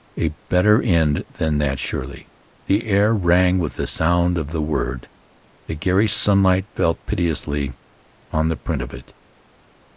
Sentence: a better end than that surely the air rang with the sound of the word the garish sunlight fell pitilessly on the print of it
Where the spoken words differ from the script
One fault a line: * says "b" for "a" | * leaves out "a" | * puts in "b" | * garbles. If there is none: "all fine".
all fine